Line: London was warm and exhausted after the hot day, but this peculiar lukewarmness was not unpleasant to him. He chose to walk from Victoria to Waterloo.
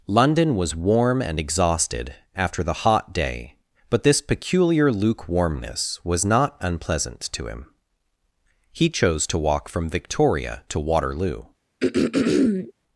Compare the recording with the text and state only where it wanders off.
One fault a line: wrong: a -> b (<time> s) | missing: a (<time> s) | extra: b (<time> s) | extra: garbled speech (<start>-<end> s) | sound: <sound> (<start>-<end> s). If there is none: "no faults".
sound: throat clearing (11.8-12.7 s)